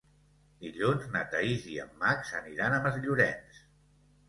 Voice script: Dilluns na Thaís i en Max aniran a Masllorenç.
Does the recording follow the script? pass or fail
pass